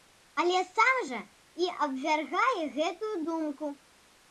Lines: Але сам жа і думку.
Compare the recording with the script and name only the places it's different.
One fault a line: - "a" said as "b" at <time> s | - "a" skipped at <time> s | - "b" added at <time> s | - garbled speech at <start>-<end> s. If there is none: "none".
- "абвяргае гэтую" added at 1.9 s